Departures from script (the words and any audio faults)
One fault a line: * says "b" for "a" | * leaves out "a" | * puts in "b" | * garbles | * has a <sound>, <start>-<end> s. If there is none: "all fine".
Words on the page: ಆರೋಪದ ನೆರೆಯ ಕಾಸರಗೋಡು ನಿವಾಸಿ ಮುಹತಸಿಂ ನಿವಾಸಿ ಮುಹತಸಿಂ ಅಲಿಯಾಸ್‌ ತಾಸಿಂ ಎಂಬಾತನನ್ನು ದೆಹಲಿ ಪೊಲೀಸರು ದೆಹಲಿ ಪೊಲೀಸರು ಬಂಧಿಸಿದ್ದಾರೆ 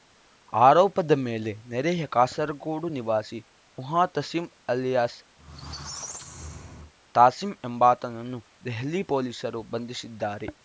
* puts in "ಮೇಲೆ"
* leaves out "ನಿವಾಸಿ ಮುಹತಸಿಂ"
* has a squeak, 5.4-6.9 s
* leaves out "ದೆಹಲಿ ಪೊಲೀಸರು"